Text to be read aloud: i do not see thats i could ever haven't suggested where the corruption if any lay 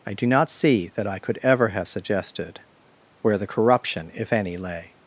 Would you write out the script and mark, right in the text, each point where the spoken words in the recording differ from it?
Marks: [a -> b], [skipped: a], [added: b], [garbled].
i do not see [thats -> that] i could ever [haven't -> have] suggested where the corruption if any lay